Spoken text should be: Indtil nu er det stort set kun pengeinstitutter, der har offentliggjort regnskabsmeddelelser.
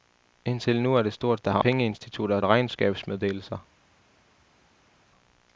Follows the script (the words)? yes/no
no